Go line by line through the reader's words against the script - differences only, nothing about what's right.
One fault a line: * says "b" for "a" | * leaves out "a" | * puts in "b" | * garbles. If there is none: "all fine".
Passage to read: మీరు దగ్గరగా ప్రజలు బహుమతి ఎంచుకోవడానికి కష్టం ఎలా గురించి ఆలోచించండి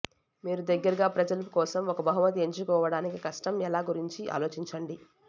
* puts in "కోసం ఒక"